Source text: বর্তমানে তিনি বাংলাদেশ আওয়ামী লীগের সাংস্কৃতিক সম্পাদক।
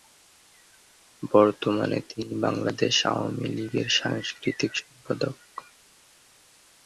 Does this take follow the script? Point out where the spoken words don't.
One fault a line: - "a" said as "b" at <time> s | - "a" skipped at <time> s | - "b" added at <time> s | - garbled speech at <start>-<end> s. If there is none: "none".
none